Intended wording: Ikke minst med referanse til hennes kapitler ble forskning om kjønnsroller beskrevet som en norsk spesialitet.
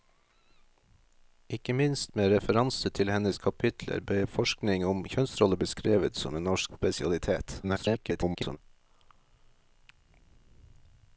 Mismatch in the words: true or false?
true